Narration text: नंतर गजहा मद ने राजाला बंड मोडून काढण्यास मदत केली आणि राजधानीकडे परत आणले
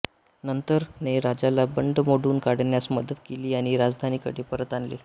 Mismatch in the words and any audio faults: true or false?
true